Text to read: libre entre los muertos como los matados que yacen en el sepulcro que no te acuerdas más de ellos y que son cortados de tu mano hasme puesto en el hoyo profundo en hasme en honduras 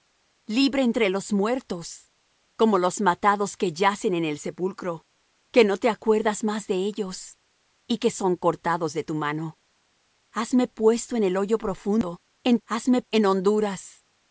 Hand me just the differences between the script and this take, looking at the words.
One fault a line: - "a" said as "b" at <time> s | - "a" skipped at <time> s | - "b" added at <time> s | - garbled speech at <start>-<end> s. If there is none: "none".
none